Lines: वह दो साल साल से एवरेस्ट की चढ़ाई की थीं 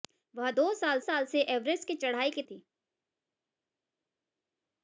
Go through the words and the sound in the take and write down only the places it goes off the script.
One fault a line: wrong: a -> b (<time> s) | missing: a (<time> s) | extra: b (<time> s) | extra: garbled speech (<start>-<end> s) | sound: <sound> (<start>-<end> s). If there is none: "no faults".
no faults